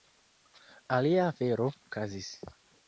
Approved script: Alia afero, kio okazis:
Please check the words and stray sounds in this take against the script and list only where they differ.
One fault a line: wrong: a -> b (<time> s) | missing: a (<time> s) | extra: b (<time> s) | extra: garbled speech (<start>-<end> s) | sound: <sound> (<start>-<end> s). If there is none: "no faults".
missing: kio (1.7 s)